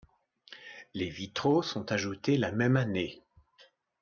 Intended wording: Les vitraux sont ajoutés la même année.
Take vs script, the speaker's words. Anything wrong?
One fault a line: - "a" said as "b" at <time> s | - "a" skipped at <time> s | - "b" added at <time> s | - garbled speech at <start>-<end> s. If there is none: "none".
none